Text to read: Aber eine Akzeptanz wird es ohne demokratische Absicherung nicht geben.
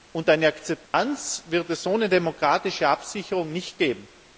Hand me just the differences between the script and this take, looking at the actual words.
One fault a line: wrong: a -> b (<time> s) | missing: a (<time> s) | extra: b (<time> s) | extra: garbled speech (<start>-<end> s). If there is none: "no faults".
wrong: Aber -> Und (0.1 s)